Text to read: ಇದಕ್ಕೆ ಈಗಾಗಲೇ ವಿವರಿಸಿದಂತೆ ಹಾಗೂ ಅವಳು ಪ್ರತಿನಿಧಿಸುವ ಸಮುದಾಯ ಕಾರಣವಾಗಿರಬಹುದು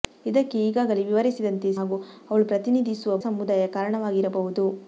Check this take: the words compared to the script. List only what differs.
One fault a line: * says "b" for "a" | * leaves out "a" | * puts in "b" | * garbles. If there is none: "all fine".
all fine